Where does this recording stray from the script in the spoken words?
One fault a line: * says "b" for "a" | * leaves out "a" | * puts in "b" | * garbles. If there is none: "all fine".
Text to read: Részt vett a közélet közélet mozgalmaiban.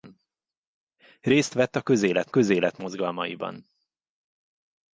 all fine